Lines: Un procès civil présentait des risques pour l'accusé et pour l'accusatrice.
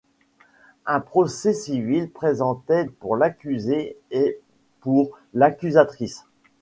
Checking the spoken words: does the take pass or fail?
fail